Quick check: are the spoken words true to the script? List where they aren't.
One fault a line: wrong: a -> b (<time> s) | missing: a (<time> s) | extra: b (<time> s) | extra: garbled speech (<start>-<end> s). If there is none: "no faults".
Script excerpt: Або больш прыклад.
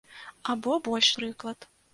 no faults